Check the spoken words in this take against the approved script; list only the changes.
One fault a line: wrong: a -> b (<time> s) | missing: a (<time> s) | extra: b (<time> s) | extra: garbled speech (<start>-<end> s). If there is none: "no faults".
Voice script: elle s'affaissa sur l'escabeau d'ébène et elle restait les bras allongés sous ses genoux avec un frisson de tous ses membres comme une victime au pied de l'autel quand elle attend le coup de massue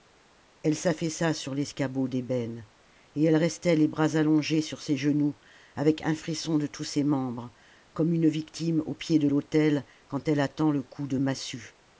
wrong: sous -> sur (4.6 s)